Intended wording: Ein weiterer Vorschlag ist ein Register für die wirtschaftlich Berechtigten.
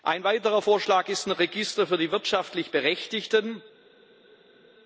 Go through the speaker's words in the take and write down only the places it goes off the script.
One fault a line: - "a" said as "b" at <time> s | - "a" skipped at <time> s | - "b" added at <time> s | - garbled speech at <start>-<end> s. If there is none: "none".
none